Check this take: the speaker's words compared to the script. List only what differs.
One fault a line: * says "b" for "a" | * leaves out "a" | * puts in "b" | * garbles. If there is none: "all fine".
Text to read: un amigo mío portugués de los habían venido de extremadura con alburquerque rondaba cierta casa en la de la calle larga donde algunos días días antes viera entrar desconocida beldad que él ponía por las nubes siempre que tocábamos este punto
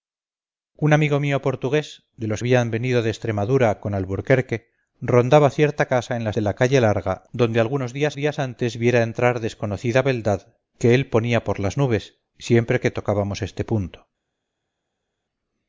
all fine